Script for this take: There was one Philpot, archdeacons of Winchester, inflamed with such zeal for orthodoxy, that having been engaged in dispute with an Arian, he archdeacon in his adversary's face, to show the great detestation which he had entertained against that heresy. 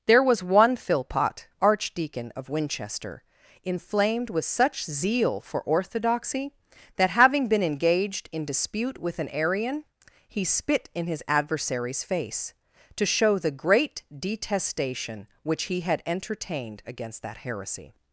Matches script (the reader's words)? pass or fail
fail